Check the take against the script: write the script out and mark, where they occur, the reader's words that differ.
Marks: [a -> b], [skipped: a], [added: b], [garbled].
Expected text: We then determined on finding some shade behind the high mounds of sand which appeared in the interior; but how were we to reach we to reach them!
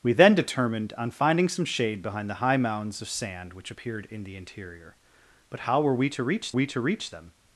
We then determined on finding some shade behind the high mounds of sand which appeared in the interior; but how were we to reach we to reach them!